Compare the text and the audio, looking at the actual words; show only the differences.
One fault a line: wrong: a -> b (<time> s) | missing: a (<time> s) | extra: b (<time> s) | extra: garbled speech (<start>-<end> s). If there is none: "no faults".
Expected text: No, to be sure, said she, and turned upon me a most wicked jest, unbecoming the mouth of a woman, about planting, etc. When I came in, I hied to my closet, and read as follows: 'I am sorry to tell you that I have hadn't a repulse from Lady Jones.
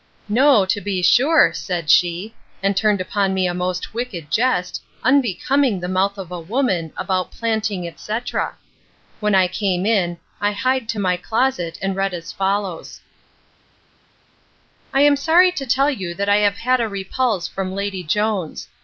wrong: hadn't -> had (16.6 s)